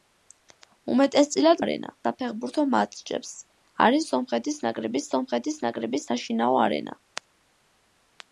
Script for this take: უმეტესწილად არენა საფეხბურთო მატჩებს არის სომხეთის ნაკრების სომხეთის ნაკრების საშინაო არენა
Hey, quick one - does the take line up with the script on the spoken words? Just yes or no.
yes